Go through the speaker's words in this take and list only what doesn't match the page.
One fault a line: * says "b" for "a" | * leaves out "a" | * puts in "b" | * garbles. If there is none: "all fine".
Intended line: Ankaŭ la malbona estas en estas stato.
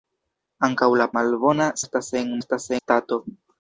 all fine